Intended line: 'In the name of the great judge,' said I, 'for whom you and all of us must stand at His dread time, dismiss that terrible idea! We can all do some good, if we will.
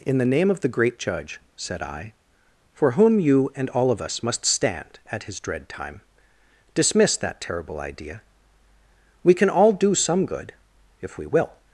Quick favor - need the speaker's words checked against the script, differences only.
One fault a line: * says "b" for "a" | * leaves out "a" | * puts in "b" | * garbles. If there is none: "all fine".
all fine